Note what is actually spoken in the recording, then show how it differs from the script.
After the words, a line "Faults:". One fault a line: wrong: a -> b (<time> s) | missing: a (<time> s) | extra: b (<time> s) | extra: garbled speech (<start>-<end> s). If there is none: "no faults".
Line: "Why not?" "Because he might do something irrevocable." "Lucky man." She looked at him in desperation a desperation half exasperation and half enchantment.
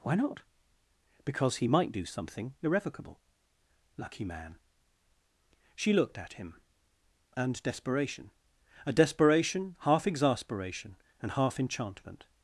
"Why not?" "Because he might do something irrevocable." "Lucky man." She looked at him and desperation a desperation half exasperation and half enchantment.
Faults:
wrong: in -> and (7.3 s)